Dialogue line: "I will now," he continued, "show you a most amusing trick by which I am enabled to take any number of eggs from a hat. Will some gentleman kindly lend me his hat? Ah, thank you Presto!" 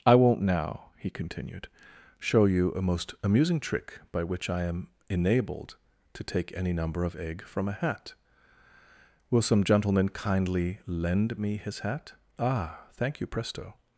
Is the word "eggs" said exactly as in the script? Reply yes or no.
no